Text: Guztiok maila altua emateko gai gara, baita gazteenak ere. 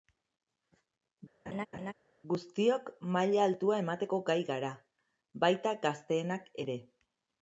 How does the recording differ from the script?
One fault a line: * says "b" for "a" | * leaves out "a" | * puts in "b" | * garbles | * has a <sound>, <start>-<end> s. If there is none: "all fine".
* has a laugh, 1.5-1.9 s